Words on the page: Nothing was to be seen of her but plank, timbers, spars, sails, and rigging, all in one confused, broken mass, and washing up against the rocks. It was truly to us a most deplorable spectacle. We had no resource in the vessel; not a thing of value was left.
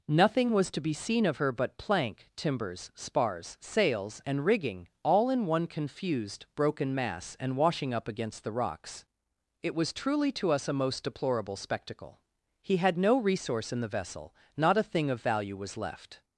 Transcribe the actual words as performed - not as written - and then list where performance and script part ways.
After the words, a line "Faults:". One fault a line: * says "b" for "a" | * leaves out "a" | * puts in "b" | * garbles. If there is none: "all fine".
Nothing was to be seen of her but plank, timbers, spars, sails, and rigging, all in one confused, broken mass, and washing up against the rocks. It was truly to us a most deplorable spectacle. He had no resource in the vessel; not a thing of value was left.
Faults:
* says "He" for "We"